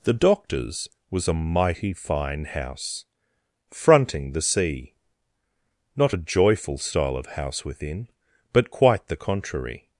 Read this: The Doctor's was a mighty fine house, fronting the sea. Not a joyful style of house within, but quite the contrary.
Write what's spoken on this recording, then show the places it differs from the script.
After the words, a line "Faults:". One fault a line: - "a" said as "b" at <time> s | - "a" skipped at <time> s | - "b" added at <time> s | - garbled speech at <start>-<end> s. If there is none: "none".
The Doctor's was a mighty fine house, fronting the sea. Not a joyful style of house within, but quite the contrary.
Faults:
none